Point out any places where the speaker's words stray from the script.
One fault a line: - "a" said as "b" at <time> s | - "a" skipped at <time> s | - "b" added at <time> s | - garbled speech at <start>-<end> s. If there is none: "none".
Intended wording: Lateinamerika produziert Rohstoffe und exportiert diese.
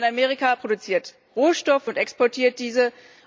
none